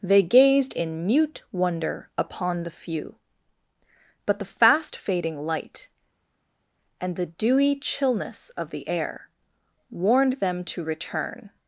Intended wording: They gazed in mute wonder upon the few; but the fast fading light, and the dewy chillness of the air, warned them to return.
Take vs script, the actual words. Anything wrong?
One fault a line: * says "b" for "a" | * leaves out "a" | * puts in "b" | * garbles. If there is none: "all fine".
all fine